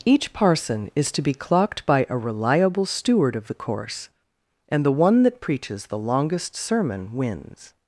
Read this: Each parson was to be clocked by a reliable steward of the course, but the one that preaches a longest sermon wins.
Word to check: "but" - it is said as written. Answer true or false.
false